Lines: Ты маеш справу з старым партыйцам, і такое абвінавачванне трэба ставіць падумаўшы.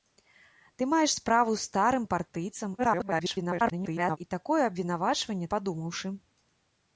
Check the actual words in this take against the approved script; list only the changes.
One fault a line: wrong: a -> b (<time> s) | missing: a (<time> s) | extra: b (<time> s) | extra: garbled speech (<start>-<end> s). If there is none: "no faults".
extra: garbled speech (2.8-4.2 s)
missing: трэба ставіць (5.5 s)